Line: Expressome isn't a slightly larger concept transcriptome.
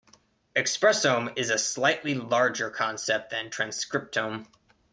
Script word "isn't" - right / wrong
wrong